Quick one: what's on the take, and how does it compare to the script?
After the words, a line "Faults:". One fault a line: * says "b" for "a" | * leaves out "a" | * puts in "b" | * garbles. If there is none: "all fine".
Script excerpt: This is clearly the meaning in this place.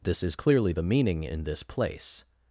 This is clearly the meaning in this place.
Faults:
all fine